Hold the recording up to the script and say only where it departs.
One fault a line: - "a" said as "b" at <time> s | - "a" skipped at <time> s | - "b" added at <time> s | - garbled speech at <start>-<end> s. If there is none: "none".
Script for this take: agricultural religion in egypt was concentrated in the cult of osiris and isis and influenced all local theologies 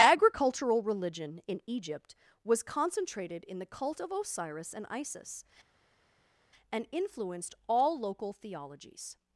none